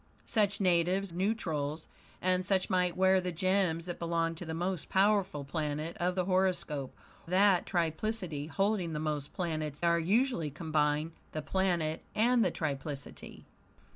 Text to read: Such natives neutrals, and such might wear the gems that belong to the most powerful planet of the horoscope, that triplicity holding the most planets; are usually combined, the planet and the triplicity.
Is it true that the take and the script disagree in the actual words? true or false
false